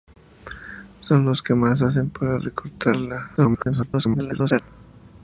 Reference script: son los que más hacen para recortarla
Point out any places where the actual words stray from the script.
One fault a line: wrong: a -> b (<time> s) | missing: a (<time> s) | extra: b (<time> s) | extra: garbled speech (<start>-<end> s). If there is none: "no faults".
extra: garbled speech (3.4-4.6 s)